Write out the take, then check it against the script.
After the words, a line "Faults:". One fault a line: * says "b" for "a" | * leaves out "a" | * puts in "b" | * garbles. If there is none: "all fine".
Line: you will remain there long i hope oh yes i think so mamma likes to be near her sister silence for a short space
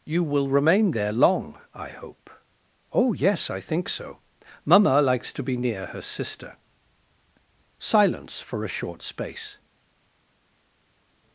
you will remain there long i hope oh yes i think so mamma likes to be near her sister silence for a short space
Faults:
all fine